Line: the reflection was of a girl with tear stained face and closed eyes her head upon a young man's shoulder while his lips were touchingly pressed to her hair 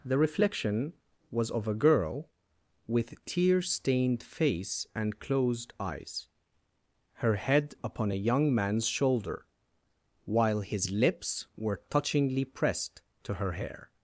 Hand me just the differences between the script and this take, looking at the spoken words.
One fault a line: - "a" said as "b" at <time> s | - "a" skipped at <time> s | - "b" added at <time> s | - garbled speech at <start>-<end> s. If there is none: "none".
none